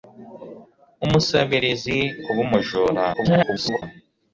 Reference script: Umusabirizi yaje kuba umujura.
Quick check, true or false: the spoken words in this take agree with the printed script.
false